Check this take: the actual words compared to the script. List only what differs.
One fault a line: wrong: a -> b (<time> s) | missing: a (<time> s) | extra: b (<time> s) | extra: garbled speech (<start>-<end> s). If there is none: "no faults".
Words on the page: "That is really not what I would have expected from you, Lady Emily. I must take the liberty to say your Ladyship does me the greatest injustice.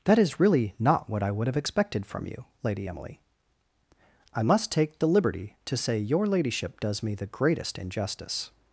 no faults